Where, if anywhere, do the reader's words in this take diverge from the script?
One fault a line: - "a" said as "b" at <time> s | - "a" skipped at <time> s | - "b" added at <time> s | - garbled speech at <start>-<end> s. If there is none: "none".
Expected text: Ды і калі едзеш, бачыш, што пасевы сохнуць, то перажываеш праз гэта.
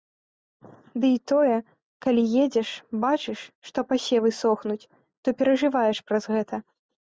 - "тое" added at 1.3 s